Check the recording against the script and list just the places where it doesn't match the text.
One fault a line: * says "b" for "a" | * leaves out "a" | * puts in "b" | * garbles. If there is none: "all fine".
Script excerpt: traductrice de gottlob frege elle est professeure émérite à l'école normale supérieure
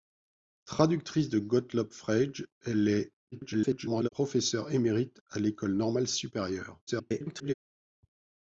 * garbles
* garbles